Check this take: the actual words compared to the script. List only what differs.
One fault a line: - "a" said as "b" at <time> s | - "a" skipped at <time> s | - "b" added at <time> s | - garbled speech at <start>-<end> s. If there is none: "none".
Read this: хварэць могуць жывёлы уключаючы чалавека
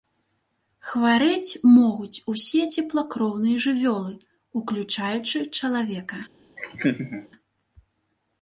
- "усе цеплакроўныя" added at 2.3 s